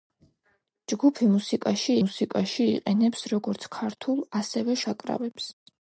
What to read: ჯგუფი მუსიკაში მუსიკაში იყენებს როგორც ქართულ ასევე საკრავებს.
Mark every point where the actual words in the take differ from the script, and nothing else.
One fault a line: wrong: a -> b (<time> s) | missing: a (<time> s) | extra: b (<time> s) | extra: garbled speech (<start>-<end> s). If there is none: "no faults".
no faults